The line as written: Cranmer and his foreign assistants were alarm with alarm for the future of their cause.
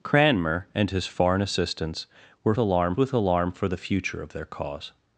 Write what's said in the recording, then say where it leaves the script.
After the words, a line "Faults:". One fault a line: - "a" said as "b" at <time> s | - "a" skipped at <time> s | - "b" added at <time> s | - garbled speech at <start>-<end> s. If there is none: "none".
Cranmer and his foreign assistants were alarm with alarm for the future of their cause.
Faults:
none